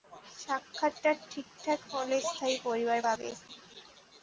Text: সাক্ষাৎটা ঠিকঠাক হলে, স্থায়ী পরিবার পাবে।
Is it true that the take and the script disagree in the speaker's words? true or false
false